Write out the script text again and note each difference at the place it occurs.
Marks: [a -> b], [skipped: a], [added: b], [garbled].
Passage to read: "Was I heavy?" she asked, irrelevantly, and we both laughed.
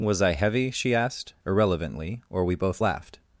"Was I heavy?" she asked, irrelevantly, [and -> or] we both laughed.